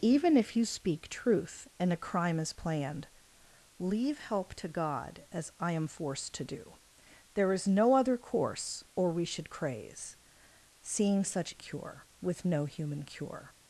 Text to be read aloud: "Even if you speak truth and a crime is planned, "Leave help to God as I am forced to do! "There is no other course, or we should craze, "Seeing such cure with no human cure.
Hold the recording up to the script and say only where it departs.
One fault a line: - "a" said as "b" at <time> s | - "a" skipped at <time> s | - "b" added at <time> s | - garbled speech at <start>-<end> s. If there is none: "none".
none